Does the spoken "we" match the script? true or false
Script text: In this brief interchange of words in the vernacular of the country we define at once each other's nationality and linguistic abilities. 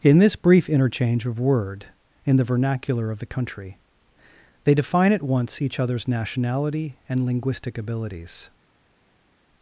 false